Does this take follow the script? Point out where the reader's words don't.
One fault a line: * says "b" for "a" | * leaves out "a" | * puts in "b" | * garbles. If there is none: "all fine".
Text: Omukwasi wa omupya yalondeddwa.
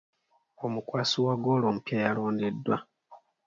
* puts in "ggoolo"